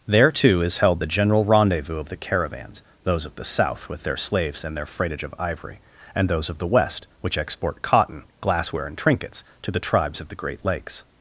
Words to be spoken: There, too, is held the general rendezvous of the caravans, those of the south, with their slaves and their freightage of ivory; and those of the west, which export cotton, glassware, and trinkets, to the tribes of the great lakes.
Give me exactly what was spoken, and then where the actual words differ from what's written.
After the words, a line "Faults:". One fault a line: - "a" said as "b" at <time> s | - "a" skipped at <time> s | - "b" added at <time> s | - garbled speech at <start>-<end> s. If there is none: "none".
There, too, is held the general rendezvous of the caravans, those of the south, with their slaves and their freightage of ivory; and those of the west, which export cotton, glassware, and trinkets, to the tribes of the great lakes.
Faults:
none